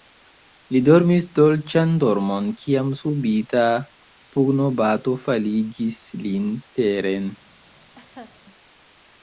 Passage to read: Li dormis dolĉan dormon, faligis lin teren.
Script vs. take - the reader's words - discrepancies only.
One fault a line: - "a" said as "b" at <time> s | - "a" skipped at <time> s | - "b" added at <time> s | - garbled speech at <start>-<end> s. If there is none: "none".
- "kiam subita pugnobato" added at 2.6 s